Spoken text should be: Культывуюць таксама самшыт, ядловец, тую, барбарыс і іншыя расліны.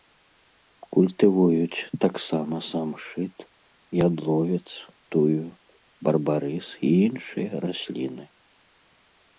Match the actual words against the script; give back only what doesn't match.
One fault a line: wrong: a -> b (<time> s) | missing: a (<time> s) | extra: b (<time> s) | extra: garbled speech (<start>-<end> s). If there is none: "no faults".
no faults